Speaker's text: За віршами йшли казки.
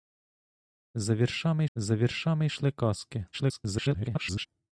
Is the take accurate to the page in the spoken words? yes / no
no